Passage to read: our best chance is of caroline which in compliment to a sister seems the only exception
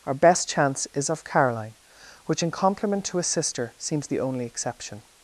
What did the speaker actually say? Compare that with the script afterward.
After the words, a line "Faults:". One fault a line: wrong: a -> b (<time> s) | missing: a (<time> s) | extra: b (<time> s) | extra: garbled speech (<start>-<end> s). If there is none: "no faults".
our best chance is of caroline which in compliment to a sister seems the only exception
Faults:
no faults